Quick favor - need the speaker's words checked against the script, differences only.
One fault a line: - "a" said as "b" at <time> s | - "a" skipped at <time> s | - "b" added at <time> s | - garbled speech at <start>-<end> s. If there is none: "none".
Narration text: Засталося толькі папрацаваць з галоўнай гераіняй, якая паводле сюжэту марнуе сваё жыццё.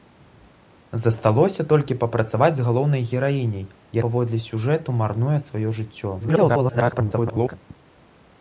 - "якая" skipped at 3.7 s
- garbled speech at 6.2-7.5 s